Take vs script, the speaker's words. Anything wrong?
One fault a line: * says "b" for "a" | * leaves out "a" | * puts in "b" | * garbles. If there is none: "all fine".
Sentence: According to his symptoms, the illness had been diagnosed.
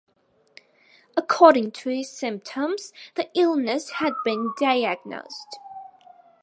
all fine